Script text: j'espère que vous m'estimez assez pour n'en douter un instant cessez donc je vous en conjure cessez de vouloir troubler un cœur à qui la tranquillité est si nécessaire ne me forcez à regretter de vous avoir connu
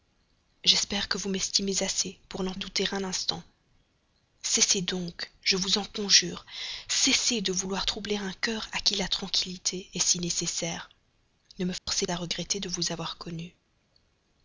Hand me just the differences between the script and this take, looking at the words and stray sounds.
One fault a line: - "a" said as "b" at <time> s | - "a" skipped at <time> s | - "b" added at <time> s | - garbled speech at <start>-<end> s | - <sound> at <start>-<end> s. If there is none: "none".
- dropout at 11.8-11.9 s